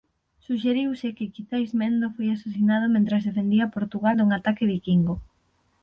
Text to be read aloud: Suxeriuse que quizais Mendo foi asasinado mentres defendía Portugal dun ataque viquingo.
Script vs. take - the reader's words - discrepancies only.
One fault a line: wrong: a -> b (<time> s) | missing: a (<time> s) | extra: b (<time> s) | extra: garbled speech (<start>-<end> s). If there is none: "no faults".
no faults